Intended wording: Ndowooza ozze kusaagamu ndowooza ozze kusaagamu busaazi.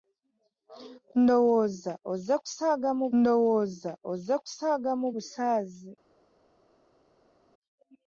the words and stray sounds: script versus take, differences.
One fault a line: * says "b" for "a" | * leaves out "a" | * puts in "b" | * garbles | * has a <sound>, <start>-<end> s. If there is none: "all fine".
all fine